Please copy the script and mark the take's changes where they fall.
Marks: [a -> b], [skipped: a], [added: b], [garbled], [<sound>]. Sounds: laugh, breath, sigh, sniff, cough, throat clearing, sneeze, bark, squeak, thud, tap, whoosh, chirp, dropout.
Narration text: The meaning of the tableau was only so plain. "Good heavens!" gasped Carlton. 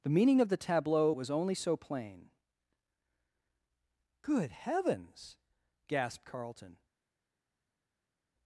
The meaning of the tableau was only so plain. "Good heavens!" gasped Carlton.